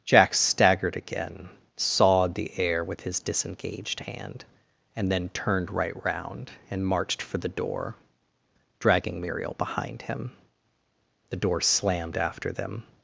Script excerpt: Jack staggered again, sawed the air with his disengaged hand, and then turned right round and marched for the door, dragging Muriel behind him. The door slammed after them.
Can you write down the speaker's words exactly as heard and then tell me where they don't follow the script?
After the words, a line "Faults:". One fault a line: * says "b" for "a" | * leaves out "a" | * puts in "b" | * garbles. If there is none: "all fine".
Jack staggered again, sawed the air with his disengaged hand, and then turned right round and marched for the door, dragging Muriel behind him. The door slammed after them.
Faults:
all fine